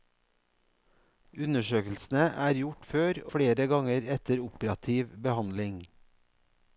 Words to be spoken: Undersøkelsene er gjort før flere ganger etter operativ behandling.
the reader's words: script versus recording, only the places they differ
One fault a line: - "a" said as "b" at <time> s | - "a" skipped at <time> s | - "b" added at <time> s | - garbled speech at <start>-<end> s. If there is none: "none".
none